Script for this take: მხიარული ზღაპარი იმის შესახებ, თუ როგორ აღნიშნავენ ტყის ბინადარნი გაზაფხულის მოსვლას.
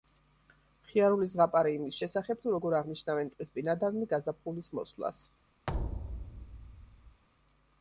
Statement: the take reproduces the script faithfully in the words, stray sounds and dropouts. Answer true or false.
false